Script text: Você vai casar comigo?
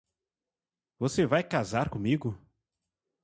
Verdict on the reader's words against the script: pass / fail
pass